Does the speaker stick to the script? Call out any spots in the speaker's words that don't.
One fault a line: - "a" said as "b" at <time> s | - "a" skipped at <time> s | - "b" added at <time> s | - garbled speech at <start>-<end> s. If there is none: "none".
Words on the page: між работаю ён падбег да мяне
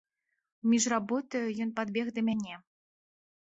none